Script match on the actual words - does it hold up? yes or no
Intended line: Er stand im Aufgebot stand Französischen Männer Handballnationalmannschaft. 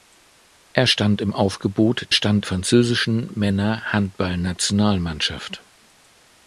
yes